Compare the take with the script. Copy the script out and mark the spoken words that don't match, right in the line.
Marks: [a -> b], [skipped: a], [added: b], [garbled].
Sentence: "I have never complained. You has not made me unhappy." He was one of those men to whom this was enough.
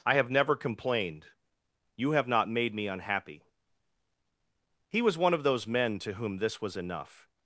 "I have never complained. You [has -> have] not made me unhappy." He was one of those men to whom this was enough.